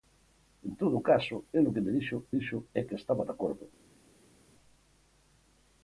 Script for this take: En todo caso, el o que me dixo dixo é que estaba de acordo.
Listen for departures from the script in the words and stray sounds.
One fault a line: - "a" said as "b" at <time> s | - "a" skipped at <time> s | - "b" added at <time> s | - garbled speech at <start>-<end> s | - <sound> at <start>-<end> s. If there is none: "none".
none